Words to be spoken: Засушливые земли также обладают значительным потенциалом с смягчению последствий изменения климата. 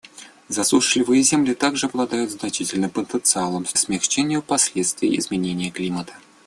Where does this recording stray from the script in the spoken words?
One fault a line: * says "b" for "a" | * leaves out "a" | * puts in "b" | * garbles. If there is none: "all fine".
all fine